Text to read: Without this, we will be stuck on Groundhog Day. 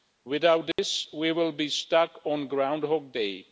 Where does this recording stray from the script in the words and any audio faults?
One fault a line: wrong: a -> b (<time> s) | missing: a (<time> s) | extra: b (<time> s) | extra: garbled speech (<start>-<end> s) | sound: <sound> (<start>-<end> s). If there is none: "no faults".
sound: dropout (0.7-0.8 s)